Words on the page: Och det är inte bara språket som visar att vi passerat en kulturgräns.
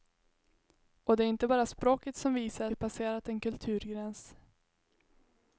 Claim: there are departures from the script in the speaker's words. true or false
true